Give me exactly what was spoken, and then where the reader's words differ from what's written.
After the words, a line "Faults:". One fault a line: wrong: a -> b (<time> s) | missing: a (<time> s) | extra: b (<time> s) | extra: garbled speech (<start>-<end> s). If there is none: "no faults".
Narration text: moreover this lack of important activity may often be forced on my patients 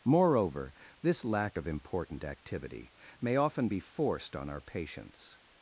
moreover this lack of important activity may often be forced on our patients
Faults:
wrong: my -> our (4.5 s)